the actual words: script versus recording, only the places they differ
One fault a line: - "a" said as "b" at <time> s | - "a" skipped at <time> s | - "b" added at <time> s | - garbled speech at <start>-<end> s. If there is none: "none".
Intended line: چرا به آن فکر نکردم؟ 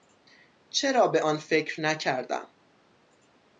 none